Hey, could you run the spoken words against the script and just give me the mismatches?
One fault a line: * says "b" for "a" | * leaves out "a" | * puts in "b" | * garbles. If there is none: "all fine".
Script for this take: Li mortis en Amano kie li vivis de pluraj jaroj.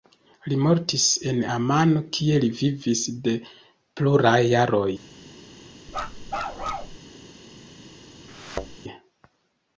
all fine